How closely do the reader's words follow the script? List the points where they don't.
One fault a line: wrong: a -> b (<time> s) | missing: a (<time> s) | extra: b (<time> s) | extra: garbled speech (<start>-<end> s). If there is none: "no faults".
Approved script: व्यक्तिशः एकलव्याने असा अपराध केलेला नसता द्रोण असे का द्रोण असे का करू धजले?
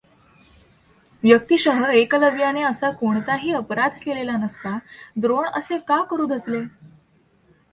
extra: कोणताही (2.9 s)
missing: द्रोण असे का (6.0 s)